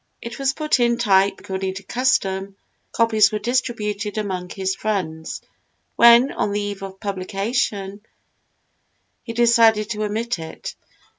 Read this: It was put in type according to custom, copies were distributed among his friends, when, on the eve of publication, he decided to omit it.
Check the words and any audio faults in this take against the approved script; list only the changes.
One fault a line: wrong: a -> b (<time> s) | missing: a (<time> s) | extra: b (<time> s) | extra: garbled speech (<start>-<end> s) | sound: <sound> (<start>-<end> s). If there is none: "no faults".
no faults